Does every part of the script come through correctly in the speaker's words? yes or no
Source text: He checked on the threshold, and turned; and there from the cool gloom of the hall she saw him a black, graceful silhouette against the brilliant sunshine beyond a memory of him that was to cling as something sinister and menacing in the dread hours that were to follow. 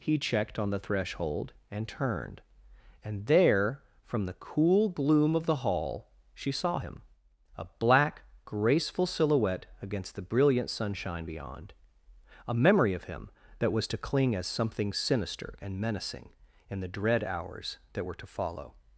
yes